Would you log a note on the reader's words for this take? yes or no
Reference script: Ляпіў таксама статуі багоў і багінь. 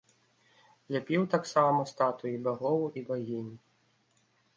no